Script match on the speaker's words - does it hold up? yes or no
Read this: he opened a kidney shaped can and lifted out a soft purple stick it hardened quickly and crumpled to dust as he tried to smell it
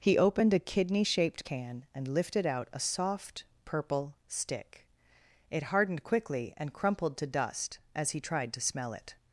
yes